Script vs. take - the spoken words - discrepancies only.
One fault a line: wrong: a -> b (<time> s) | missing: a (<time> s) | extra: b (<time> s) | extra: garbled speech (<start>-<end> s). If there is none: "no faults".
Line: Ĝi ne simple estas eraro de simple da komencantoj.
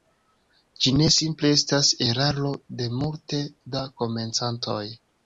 wrong: simple -> multe (3.0 s)